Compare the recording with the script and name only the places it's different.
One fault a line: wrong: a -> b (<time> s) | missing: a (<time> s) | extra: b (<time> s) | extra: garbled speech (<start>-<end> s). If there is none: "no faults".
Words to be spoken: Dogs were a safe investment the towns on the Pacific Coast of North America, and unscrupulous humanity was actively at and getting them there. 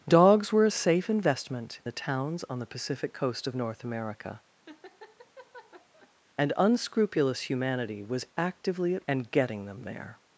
no faults